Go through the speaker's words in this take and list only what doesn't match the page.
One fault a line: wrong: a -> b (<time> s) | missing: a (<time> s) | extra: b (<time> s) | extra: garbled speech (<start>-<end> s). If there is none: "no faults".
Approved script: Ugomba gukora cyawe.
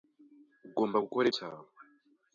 no faults